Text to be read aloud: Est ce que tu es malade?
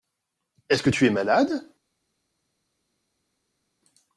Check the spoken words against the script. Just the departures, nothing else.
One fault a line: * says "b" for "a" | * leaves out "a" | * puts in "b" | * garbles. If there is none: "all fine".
all fine